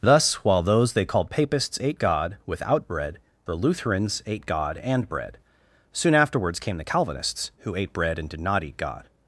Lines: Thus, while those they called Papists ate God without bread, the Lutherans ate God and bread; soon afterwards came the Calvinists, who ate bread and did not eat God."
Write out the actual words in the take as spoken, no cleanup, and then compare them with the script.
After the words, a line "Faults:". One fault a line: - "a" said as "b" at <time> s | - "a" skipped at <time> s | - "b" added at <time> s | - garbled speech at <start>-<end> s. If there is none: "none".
Thus, while those they called Papists ate God without bread, the Lutherans ate God and bread; soon afterwards came the Calvinists, who ate bread and did not eat God."
Faults:
none